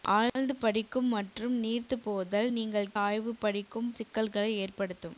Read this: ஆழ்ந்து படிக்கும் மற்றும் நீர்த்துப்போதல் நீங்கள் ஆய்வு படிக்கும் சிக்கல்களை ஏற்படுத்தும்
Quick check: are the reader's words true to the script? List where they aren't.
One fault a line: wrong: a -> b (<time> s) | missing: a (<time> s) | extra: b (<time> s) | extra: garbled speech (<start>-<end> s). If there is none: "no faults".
no faults